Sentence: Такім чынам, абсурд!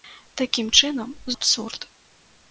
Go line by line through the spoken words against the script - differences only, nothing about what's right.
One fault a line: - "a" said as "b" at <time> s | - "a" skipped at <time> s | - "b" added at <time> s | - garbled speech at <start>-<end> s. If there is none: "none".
none